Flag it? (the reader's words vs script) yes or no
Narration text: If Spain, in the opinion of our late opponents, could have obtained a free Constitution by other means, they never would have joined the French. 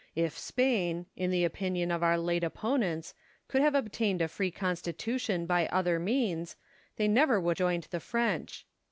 yes